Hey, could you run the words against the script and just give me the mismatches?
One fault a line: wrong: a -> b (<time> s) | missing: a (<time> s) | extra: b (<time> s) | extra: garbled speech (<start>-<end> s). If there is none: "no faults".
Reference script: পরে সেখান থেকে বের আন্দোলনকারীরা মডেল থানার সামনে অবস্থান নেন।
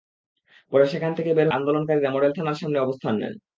no faults